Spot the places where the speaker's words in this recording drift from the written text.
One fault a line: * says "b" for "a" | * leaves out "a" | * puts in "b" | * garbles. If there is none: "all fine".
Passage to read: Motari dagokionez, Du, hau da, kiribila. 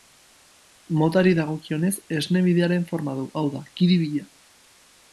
* puts in "Esne Bidearen forma"